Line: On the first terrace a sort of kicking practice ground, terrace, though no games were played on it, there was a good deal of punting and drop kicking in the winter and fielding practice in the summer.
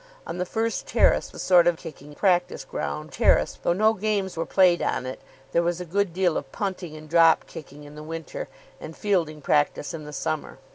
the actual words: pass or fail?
pass